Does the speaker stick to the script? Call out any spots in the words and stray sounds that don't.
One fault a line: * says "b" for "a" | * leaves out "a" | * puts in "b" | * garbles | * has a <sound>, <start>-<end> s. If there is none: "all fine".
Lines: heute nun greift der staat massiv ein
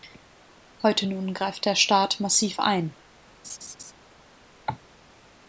* has a laugh, 3.4-3.9 s
* has a cough, 4.7-4.8 s